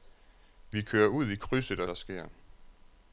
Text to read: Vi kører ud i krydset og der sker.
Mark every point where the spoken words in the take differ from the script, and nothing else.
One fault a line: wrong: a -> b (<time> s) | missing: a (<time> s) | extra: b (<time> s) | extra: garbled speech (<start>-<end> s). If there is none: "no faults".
no faults